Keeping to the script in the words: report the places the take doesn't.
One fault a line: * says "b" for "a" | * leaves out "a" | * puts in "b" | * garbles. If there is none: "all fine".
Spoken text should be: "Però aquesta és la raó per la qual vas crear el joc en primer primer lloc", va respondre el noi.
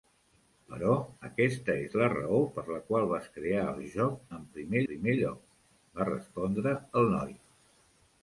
all fine